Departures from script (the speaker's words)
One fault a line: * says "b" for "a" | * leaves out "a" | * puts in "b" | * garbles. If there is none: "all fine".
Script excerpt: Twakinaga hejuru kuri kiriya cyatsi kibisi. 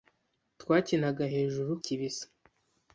* leaves out "kuri kiriya cyatsi"